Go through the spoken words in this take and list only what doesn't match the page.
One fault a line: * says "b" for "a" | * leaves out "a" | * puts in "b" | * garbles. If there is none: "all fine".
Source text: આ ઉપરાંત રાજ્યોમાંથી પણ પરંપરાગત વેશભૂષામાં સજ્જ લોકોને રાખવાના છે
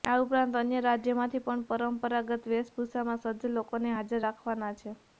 * puts in "અન્ય"
* puts in "હાજર"